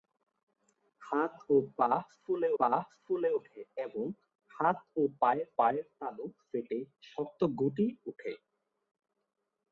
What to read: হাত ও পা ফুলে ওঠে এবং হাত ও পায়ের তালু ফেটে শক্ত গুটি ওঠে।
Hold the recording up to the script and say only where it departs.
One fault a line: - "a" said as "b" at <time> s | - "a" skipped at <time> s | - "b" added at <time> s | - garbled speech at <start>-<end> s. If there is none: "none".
- "পা ফুলে" added at 2.6 s
- "পায়ের" added at 5.6 s